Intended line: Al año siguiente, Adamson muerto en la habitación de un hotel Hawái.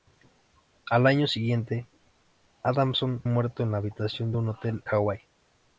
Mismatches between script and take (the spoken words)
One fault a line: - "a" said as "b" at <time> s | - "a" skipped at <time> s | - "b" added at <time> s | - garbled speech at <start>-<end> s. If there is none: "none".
none